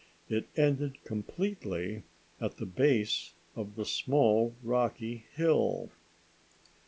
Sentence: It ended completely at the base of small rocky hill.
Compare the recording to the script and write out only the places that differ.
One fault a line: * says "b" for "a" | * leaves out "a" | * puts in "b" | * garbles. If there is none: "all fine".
* puts in "the"